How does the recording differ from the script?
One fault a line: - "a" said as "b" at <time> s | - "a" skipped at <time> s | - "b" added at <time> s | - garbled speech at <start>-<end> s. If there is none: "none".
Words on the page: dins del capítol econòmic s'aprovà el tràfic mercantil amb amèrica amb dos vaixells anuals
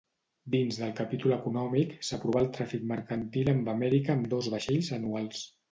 none